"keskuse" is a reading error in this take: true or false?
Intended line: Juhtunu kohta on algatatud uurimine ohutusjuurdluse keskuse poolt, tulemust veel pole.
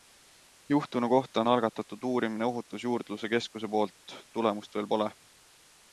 false